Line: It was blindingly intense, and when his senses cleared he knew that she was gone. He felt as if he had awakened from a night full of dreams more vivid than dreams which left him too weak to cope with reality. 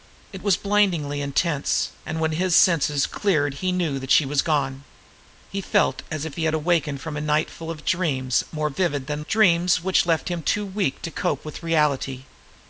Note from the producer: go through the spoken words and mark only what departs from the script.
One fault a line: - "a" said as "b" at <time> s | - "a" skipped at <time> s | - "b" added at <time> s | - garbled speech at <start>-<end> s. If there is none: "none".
none